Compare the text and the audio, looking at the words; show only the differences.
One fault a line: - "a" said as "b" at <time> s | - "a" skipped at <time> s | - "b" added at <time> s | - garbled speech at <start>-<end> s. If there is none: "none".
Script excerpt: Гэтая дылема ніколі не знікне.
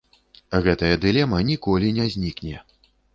none